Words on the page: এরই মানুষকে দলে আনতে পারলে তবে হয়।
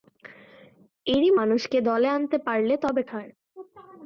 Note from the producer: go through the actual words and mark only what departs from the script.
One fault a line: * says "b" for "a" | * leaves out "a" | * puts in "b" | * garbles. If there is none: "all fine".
all fine